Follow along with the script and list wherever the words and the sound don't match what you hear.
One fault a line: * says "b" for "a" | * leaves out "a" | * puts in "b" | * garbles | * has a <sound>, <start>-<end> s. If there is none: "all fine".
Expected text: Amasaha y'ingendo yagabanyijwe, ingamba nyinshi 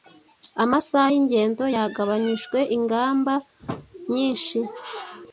all fine